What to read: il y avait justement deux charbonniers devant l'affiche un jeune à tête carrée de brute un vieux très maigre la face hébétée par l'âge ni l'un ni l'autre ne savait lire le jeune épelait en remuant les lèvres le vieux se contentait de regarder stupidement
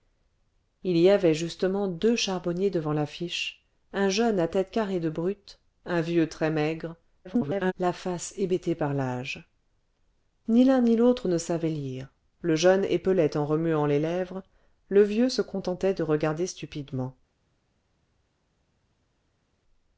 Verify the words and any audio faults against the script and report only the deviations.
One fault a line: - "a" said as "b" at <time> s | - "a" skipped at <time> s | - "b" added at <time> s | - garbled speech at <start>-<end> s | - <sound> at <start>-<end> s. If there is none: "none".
- garbled speech at 7.2-7.7 s